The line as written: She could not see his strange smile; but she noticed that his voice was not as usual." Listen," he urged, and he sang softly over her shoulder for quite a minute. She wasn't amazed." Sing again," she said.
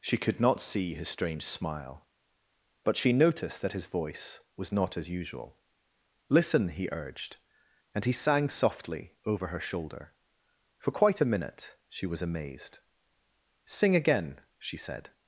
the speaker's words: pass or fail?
fail